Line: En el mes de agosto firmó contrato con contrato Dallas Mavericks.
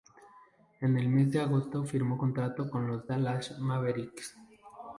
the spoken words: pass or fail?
fail